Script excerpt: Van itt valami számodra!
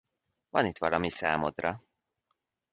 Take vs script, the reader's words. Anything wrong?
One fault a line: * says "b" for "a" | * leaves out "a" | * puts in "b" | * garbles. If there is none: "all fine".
all fine